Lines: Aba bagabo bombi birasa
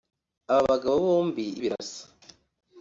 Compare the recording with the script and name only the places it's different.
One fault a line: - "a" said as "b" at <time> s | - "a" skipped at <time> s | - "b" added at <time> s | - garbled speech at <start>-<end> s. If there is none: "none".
none